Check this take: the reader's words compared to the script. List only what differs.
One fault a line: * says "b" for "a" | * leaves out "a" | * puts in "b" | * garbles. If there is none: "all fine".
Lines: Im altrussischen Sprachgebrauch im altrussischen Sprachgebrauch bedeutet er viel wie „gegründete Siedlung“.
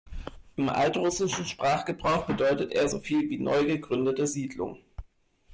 * leaves out "im altrussischen Sprachgebrauch"
* puts in "so"
* puts in "neu"